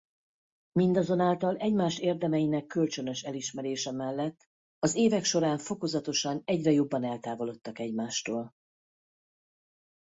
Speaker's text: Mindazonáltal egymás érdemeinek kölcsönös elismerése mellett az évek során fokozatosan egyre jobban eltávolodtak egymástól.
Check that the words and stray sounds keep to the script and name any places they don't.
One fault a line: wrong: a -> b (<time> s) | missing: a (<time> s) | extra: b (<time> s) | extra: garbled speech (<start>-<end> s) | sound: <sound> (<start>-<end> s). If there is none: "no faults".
no faults